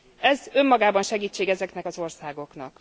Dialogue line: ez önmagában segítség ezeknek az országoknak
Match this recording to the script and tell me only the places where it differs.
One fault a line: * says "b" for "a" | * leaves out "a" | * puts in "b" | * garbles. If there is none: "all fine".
all fine